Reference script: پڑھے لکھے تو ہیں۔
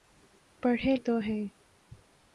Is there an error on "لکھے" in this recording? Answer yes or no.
yes